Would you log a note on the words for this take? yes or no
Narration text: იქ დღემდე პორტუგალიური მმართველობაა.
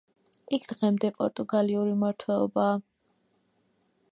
no